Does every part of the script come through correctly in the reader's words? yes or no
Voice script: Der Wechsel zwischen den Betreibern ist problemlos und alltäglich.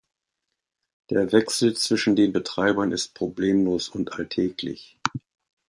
yes